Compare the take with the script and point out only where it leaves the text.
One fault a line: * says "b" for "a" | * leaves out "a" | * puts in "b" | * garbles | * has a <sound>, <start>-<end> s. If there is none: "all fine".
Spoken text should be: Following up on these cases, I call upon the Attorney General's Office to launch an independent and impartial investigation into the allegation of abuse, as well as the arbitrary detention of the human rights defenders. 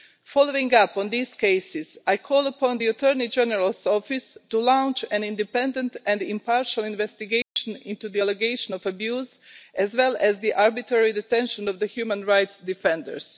* has a dropout, 7.4-7.6 s